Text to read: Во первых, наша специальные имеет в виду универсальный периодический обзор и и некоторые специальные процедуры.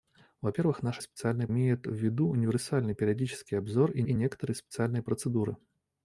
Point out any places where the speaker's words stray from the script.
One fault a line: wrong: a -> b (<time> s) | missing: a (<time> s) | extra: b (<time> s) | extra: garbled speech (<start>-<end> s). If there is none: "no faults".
no faults